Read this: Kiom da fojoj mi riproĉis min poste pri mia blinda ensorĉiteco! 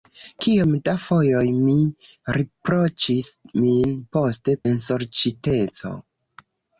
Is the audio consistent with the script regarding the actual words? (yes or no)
no